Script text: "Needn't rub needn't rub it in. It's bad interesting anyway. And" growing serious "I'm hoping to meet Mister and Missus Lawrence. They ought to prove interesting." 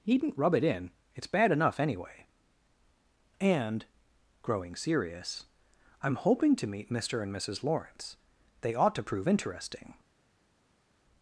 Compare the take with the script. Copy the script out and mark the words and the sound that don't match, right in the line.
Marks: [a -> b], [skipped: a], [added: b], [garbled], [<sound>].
"Needn't rub [skipped: needn't rub] it in. It's bad [interesting -> enough] anyway. And" growing serious "I'm hoping to meet Mister and Missus Lawrence. They ought to prove interesting."